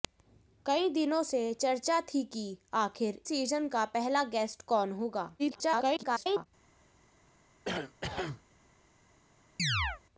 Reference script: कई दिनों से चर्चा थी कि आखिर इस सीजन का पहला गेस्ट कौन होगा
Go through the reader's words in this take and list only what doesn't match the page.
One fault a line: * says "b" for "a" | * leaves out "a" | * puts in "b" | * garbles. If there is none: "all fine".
* leaves out "इस"
* garbles